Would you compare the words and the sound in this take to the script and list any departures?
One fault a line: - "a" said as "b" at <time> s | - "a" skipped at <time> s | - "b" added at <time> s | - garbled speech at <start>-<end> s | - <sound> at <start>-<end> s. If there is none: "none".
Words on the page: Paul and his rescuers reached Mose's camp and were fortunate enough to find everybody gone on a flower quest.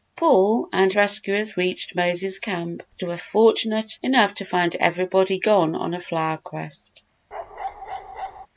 - "his" skipped at 0.9 s
- bark at 7.3-8.5 s